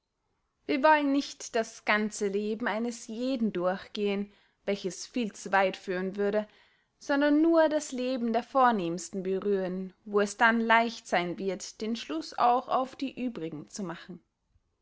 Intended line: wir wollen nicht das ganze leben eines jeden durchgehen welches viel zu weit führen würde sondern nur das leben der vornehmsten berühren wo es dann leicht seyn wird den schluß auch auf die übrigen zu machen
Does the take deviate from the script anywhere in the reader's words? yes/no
no